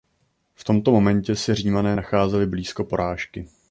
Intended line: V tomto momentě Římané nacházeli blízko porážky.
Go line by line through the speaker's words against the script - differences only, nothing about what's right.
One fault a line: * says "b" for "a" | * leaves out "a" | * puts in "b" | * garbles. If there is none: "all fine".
* puts in "se"